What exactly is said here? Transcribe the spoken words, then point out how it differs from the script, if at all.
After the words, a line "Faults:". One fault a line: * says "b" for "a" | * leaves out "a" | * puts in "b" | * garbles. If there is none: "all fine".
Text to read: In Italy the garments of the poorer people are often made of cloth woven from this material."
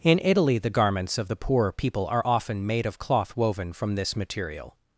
In Italy the garments of the poor people are often made of cloth woven from this material."
Faults:
* says "poor" for "poorer"